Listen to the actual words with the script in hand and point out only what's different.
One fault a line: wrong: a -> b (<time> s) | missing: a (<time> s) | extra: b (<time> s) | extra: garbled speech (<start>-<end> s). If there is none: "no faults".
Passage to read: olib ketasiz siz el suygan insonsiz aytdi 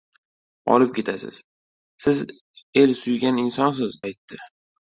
no faults